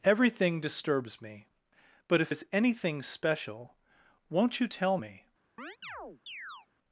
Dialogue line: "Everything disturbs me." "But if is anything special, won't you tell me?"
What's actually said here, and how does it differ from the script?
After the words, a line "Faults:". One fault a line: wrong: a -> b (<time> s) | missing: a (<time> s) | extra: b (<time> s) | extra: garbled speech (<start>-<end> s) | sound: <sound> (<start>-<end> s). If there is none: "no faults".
"Everything disturbs me." "But if is anything special, won't you tell me?"
Faults:
sound: chirp (5.6-6.7 s)